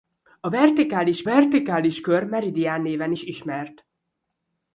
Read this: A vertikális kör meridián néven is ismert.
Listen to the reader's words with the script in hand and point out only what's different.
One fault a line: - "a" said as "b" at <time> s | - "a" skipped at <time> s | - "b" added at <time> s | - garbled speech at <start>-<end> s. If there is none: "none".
- "vertikális" added at 1.2 s